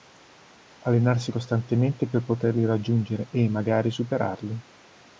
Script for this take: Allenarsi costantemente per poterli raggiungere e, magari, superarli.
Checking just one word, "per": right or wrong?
right